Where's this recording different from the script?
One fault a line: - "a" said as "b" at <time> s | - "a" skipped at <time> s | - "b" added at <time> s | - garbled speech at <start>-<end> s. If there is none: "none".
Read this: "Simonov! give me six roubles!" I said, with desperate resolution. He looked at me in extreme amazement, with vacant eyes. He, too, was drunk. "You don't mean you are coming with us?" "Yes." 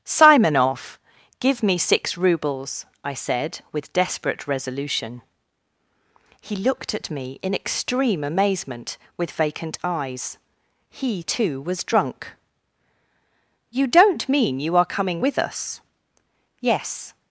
none